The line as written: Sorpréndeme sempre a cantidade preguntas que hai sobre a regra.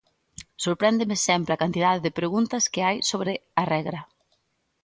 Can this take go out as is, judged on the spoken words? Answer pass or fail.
fail